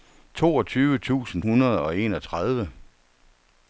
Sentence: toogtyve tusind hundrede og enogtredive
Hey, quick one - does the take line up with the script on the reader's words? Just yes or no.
yes